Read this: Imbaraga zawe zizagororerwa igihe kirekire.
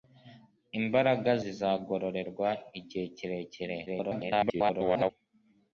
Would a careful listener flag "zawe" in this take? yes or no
yes